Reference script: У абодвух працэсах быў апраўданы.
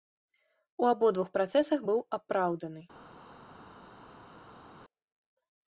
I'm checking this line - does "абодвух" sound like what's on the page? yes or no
yes